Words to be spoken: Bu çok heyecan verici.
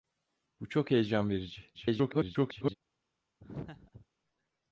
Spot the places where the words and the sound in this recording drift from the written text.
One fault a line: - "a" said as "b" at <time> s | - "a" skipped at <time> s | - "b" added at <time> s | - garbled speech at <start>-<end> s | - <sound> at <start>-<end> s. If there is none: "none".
- garbled speech at 1.7-2.7 s
- laugh at 3.4-4.1 s